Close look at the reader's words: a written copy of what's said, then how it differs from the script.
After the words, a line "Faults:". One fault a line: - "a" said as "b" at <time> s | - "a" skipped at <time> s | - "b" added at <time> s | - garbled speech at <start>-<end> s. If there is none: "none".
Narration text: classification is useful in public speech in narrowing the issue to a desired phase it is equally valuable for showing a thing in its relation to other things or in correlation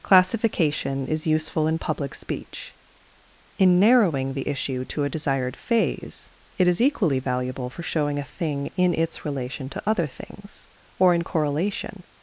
classification is useful in public speech in narrowing the issue to a desired phase it is equally valuable for showing a thing in its relation to other things or in correlation
Faults:
none